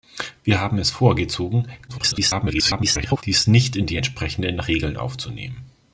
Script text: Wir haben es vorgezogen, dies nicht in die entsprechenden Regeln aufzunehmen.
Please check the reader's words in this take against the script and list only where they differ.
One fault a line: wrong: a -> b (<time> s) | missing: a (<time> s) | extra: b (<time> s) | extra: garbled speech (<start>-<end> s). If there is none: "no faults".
extra: garbled speech (1.9-3.2 s)